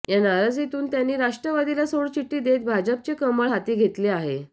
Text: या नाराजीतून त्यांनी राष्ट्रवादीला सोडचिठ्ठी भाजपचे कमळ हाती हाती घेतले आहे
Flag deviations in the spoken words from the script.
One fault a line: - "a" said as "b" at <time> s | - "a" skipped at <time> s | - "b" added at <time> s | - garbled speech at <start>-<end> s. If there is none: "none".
- "देत" added at 2.4 s
- "हाती" skipped at 3.7 s